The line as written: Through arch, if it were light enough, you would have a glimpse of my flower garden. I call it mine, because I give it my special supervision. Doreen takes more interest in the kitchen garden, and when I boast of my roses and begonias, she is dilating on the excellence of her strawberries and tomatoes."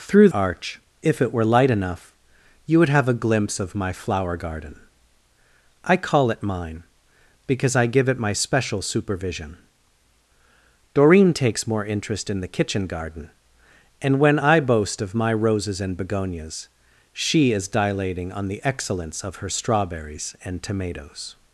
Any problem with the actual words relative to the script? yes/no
no